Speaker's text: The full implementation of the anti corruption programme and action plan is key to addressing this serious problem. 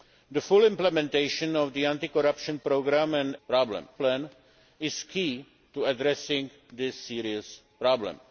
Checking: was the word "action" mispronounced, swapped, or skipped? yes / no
yes